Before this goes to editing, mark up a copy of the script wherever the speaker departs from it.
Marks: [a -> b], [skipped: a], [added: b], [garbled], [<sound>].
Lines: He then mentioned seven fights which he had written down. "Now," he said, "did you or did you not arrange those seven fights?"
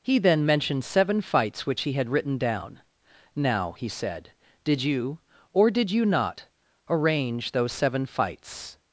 He then mentioned seven fights which he had written down. "Now," he said, "did you or did you not arrange those seven fights?"